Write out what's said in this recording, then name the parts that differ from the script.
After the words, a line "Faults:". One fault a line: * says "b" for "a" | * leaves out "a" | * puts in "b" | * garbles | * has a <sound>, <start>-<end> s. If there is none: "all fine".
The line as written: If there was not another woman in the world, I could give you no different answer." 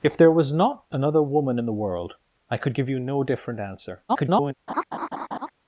If there was not another woman in the world, I could give you no different answer." [garbled]
Faults:
* garbles
* has a laugh, 4.7-5.5 s